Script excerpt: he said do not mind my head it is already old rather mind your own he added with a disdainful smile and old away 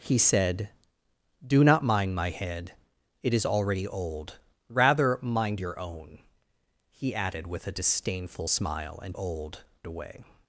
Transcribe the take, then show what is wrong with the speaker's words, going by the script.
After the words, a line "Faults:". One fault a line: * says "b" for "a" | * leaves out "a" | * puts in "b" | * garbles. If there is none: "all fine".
he said do not mind my head it is already old rather mind your own he added with a disdainful smile and old away
Faults:
all fine